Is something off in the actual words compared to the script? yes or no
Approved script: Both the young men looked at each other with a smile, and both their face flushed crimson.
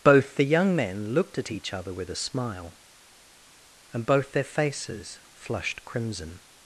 yes